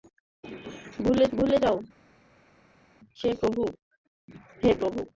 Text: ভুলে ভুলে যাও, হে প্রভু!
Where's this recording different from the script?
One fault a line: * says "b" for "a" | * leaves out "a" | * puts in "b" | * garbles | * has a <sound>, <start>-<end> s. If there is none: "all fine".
all fine